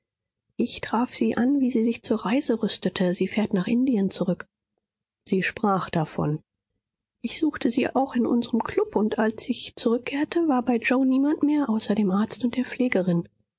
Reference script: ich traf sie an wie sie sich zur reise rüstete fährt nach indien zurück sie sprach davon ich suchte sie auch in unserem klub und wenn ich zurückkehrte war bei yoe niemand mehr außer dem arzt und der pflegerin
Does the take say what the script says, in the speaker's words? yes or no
no